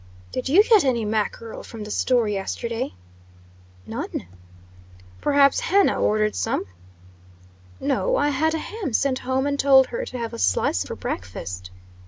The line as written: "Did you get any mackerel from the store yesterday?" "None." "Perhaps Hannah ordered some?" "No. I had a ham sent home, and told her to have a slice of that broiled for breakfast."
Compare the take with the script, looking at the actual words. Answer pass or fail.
fail